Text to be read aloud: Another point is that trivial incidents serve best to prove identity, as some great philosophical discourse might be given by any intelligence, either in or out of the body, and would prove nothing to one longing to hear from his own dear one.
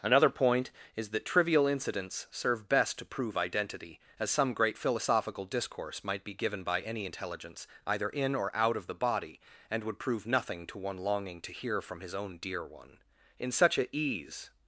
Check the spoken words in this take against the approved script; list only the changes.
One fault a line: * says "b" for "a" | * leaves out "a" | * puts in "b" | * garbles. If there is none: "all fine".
* puts in "In such a ease"